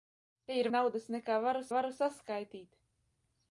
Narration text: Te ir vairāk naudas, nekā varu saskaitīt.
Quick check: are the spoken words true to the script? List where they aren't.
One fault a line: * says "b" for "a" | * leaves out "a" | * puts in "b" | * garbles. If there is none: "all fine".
* leaves out "vairāk"
* puts in "varu"